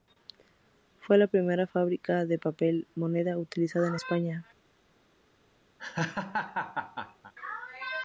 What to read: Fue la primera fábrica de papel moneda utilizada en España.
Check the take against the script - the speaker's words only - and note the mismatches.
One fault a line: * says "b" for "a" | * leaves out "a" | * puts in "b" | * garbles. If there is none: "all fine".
all fine